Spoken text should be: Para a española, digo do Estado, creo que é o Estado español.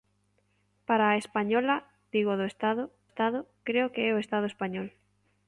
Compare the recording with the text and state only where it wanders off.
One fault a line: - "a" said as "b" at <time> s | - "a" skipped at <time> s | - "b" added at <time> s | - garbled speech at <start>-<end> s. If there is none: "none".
- "Estado" added at 3.1 s